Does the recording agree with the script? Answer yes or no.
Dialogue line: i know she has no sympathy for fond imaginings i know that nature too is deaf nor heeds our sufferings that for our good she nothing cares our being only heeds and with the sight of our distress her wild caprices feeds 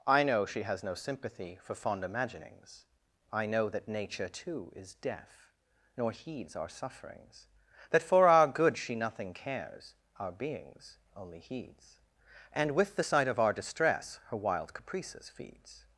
no